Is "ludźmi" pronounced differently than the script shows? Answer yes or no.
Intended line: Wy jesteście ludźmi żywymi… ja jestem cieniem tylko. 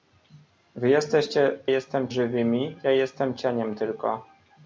yes